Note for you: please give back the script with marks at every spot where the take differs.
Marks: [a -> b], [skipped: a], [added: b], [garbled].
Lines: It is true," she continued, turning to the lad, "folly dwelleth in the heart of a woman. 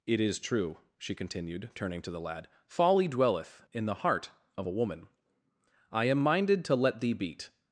It is true," she continued, turning to the lad, "folly dwelleth in the heart of a woman. [added: I am minded to let thee beat]